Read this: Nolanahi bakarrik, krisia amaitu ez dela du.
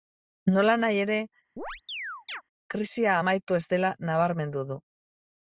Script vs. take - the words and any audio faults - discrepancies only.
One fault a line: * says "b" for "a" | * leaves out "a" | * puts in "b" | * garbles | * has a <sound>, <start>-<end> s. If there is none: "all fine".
* says "ere" for "bakarrik"
* has a chirp, 1.6-2.4 s
* puts in "nabarmendu"